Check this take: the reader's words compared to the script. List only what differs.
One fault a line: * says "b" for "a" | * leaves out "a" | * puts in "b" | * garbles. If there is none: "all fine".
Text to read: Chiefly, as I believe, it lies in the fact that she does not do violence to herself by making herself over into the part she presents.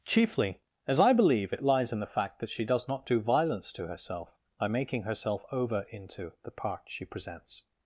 all fine